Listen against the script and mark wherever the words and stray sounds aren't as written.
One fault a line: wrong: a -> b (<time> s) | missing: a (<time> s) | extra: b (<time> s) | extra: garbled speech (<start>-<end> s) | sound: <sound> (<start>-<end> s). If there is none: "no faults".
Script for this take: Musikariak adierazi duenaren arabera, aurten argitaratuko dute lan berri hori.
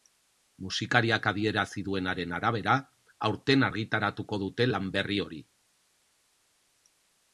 no faults